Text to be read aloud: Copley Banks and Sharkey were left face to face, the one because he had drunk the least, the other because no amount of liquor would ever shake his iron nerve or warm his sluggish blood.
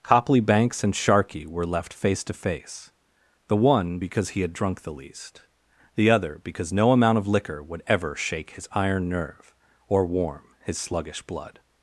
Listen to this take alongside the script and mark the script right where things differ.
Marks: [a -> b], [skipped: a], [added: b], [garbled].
Copley Banks and Sharkey were left face to face, the one because he had drunk the least, the other because no amount of liquor would ever shake his iron nerve or warm his sluggish blood.